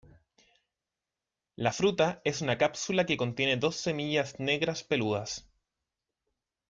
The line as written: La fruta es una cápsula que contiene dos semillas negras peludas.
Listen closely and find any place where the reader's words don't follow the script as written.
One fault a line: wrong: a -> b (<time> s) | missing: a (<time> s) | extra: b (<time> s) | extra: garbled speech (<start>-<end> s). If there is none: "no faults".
no faults